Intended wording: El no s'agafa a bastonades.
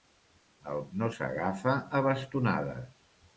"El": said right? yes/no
yes